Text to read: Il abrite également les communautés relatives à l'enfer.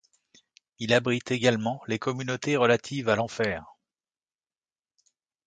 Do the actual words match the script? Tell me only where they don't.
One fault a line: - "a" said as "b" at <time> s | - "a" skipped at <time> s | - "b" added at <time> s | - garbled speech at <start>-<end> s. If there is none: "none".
none